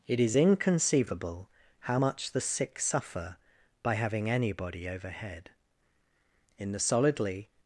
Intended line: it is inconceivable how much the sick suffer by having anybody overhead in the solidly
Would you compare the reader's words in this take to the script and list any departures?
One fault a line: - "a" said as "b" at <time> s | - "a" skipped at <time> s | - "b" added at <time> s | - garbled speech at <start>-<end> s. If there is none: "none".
none